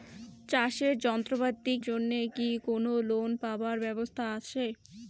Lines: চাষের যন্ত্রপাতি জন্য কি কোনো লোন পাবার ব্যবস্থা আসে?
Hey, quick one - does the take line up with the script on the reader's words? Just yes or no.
yes